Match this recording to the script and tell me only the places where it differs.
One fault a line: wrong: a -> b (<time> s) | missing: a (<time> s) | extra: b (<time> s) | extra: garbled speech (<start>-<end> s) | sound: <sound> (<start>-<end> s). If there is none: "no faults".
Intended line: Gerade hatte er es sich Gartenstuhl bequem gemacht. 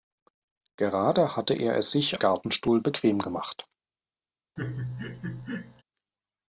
sound: laugh (4.6-5.8 s)